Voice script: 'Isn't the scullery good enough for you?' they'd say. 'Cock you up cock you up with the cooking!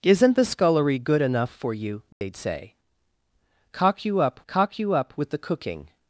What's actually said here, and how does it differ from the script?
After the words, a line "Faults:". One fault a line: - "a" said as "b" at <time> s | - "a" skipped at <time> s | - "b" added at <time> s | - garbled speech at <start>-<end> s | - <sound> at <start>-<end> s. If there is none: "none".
'Isn't the scullery good enough for you?' they'd say. 'Cock you up cock you up with the cooking!
Faults:
- dropout at 2.1-2.2 s